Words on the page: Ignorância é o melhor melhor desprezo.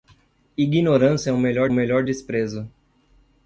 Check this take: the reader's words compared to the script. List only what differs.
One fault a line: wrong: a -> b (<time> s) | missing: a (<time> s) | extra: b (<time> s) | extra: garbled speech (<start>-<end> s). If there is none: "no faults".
no faults